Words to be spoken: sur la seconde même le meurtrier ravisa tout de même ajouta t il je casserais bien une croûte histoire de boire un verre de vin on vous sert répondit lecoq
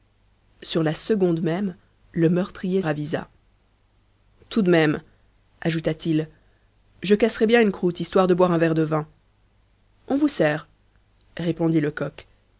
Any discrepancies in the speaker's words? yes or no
no